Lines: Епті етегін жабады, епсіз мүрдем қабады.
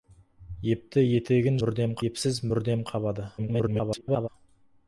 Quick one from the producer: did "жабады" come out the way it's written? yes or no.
no